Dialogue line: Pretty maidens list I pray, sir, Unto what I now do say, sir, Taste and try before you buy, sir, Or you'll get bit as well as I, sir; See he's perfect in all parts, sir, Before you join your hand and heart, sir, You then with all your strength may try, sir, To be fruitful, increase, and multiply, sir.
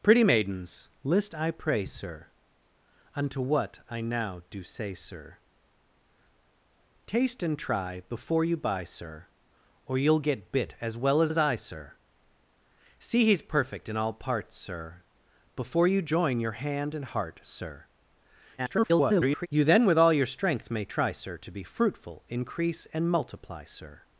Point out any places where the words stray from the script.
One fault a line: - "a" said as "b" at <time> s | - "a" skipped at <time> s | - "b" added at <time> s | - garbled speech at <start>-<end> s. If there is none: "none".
- "as" added at 11.3 s
- garbled speech at 18.6-19.5 s